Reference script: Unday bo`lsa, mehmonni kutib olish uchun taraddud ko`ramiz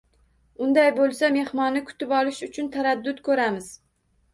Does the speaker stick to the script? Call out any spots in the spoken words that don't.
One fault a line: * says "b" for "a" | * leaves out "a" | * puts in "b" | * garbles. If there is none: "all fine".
all fine